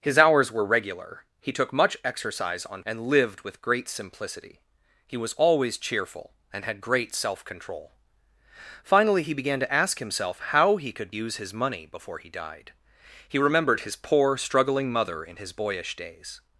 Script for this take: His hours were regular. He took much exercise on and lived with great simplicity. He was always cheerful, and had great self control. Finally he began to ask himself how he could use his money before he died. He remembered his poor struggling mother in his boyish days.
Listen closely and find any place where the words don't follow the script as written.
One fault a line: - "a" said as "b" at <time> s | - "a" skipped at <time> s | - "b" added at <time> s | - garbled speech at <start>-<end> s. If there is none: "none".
none